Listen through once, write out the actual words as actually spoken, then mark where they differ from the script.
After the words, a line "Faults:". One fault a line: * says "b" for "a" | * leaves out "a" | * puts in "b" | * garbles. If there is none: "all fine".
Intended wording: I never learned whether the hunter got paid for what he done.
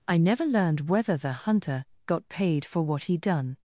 I never learned whether the hunter got paid for what he done.
Faults:
all fine